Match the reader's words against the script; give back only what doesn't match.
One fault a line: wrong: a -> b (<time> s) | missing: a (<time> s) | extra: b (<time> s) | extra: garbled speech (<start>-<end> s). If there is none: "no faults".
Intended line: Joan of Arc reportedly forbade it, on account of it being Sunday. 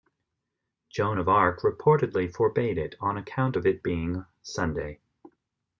no faults